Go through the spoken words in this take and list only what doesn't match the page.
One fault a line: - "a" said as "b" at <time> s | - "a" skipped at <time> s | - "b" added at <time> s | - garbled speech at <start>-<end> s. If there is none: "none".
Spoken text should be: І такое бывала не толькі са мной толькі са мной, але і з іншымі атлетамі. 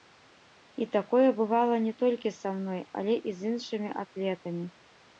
- "толькі са мной" skipped at 2.8 s